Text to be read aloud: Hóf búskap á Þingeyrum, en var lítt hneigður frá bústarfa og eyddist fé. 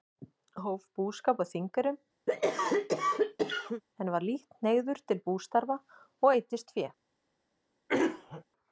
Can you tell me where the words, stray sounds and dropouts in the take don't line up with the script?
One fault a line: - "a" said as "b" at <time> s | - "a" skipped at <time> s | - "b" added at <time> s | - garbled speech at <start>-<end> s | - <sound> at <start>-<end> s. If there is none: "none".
- cough at 2.3-3.8 s
- "frá" said as "til" at 5.1 s
- throat clearing at 7.9-8.4 s